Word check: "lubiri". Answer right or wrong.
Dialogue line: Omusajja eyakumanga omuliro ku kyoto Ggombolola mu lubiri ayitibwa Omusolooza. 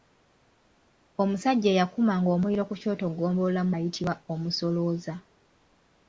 wrong